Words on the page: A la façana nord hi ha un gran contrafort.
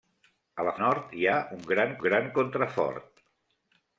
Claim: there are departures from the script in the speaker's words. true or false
true